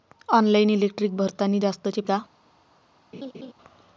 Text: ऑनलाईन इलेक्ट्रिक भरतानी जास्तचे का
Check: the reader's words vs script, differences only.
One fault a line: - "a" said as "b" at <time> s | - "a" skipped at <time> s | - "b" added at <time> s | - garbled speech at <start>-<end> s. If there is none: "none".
none